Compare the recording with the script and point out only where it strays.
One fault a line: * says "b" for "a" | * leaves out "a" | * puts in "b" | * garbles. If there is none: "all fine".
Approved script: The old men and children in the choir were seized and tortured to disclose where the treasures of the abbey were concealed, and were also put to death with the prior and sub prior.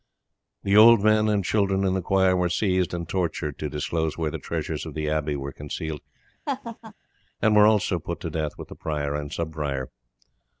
all fine